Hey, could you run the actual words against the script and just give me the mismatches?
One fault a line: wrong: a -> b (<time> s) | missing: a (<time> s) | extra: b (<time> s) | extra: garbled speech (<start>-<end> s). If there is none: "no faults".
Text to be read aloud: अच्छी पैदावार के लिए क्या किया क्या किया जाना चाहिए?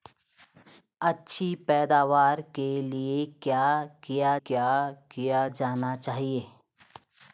no faults